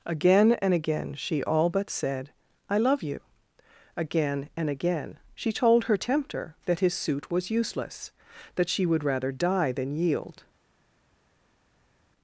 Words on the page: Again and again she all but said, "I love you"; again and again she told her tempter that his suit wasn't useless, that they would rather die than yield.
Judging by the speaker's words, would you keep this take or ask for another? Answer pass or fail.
fail